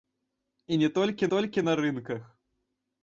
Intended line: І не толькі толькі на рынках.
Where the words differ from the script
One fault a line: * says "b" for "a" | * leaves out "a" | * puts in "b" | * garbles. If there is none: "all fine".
all fine